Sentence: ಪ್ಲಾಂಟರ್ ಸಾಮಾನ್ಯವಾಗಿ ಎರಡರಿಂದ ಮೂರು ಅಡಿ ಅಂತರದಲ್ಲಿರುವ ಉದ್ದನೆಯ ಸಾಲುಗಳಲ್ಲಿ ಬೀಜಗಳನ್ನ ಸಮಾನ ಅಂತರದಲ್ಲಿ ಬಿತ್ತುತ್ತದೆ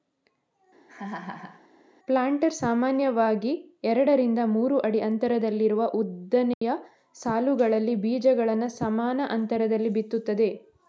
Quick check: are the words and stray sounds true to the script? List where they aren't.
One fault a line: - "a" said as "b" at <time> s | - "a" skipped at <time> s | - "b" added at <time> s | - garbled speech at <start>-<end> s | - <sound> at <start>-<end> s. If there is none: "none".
- laugh at 0.9-1.7 s
- dropout at 6.5-6.6 s